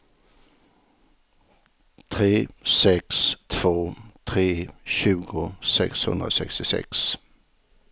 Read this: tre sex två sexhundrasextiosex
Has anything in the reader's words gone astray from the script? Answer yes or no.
yes